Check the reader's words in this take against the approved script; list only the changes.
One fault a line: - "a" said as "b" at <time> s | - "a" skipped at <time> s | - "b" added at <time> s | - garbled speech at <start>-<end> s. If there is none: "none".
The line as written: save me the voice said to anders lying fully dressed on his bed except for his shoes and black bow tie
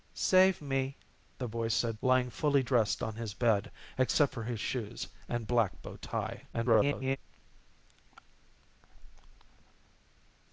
- "to anders" skipped at 1.9 s
- garbled speech at 6.5-7.2 s